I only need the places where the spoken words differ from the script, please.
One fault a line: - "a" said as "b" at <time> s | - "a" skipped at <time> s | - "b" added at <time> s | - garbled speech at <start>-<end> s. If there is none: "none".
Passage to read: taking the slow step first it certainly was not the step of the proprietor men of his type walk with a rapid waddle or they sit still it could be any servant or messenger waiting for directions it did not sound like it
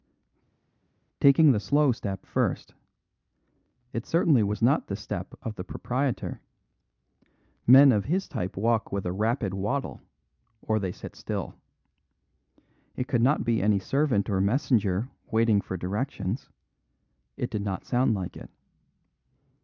- "not" added at 13.2 s